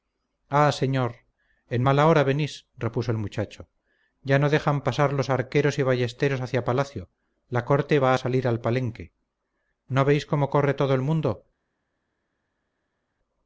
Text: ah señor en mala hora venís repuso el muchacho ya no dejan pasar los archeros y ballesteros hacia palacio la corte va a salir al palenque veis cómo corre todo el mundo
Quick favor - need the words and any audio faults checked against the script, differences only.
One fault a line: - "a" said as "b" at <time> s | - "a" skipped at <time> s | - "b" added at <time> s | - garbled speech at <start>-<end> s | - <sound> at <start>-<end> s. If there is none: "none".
- "no" added at 9.9 s